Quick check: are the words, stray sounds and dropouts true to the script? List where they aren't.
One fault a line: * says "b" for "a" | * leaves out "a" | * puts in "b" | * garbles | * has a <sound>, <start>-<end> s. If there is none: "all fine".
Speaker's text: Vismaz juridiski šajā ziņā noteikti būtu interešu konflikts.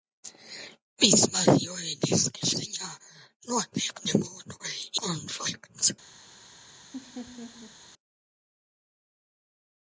* leaves out "šajā"
* leaves out "interešu"
* has a laugh, 6.9-7.8 s